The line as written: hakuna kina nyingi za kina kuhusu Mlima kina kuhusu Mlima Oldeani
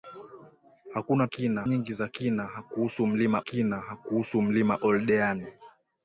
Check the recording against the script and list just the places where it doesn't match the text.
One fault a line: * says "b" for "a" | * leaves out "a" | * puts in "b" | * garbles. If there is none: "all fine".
all fine